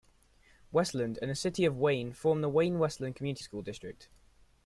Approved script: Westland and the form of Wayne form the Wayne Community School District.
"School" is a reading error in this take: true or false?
false